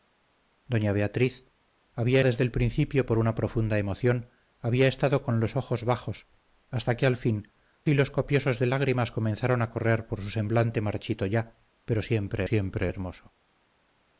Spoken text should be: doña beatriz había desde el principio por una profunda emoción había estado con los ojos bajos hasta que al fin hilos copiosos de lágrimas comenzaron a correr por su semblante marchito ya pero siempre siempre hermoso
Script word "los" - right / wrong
right